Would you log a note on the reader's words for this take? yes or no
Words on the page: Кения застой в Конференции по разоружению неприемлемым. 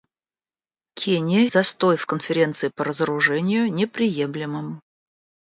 no